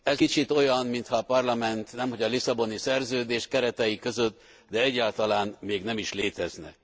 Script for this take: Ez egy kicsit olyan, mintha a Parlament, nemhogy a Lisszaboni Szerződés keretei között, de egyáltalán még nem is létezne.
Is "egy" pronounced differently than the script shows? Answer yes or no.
yes